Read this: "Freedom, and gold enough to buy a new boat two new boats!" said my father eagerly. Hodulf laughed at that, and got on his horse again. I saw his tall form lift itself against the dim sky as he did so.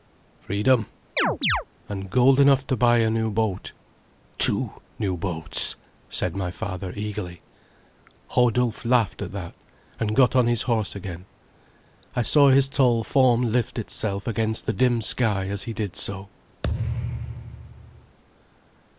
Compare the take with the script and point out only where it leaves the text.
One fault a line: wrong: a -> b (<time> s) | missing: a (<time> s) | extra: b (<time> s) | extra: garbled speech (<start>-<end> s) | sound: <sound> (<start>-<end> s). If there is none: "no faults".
sound: chirp (1.2-1.6 s)
sound: thud (16.6-18.2 s)